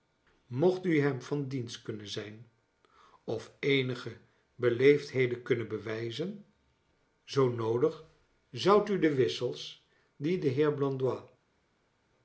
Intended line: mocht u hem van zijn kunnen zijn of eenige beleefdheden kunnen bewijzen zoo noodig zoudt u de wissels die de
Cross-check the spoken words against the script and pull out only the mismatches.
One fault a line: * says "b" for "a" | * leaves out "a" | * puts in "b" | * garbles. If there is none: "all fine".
* says "dienst" for "zijn"